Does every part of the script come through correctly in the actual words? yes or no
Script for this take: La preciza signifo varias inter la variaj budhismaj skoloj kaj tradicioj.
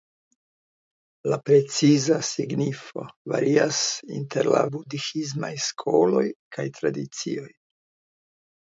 no